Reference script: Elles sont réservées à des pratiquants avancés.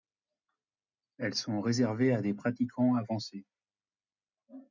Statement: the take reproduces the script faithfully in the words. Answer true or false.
true